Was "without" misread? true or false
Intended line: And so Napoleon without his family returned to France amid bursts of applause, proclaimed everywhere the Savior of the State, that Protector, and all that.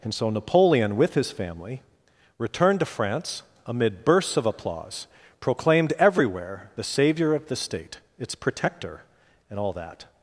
true